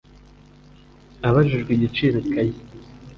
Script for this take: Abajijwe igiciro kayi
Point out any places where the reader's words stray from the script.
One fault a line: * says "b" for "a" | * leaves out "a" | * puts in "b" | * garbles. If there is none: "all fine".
all fine